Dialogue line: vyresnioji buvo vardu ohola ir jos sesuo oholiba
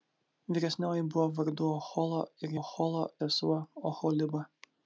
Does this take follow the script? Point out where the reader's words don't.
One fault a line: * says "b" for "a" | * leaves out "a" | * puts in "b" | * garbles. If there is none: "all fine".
* says "ohola" for "jos"